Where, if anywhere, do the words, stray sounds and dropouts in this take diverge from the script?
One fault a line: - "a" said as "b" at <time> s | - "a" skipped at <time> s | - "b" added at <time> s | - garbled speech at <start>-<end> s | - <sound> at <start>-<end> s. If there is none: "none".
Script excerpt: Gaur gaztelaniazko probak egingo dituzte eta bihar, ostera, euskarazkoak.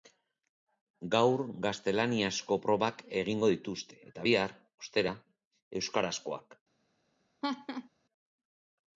- laugh at 7.4-7.9 s